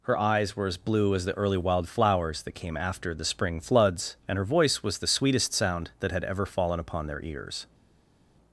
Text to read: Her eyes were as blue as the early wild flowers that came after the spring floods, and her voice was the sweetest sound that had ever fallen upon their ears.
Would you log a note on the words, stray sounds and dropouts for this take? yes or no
no